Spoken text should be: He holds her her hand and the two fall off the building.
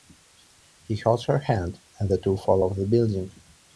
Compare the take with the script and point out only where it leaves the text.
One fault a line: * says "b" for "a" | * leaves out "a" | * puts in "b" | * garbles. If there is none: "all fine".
* leaves out "her"